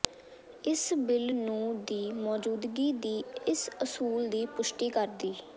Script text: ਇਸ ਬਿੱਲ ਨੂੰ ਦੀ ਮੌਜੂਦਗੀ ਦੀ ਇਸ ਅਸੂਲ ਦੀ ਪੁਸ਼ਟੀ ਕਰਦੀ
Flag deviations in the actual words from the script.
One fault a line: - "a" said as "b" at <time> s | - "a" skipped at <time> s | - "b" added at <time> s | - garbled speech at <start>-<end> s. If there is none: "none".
none